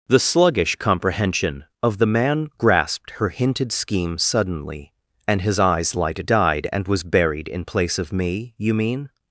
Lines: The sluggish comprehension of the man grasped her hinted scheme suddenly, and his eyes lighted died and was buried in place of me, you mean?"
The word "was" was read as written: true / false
true